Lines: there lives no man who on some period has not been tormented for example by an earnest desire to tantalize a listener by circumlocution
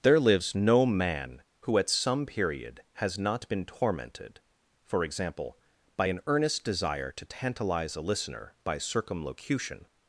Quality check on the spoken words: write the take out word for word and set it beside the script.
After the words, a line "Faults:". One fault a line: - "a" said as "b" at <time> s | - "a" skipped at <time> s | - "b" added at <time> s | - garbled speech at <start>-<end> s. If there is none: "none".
there lives no man who at some period has not been tormented for example by an earnest desire to tantalize a listener by circumlocution
Faults:
- "on" said as "at" at 1.8 s